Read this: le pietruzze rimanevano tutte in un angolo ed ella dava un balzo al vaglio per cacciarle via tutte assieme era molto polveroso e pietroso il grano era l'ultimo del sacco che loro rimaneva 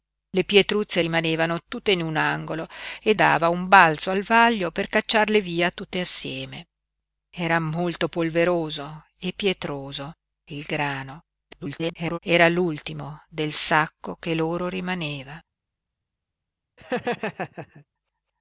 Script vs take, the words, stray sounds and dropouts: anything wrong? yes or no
yes